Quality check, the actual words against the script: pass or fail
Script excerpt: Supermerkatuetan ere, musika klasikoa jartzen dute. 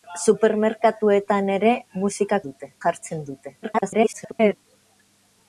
fail